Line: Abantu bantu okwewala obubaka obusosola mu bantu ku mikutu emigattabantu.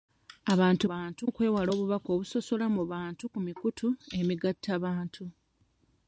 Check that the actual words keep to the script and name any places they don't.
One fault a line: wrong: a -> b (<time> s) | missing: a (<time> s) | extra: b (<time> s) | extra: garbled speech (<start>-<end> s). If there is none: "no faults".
no faults